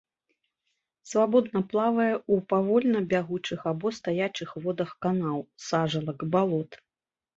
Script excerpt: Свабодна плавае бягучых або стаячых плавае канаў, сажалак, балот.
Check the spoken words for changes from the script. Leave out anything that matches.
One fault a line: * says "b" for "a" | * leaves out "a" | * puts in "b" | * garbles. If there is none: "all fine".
* puts in "ў павольна"
* says "водах" for "плавае"